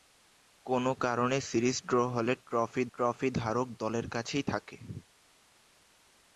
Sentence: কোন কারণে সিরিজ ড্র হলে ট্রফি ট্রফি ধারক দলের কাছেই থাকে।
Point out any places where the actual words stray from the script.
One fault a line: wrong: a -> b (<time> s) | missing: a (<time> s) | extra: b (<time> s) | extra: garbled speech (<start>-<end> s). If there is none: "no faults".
no faults